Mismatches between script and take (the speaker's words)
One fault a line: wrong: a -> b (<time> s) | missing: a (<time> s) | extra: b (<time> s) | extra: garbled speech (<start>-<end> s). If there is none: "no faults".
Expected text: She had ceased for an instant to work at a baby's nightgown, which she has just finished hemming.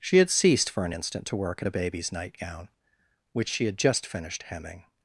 wrong: has -> had (3.6 s)